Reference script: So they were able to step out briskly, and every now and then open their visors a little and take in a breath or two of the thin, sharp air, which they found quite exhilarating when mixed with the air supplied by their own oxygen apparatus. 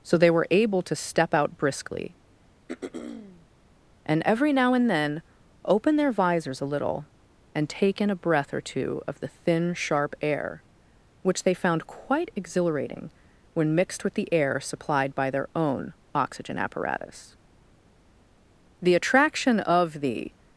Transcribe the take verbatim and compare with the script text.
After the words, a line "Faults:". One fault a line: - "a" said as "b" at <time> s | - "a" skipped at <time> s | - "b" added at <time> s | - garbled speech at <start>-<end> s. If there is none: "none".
So they were able to step out briskly, and every now and then open their visors a little and take in a breath or two of the thin, sharp air, which they found quite exhilarating when mixed with the air supplied by their own oxygen apparatus. The attraction of the
Faults:
- "The attraction of the" added at 18.8 s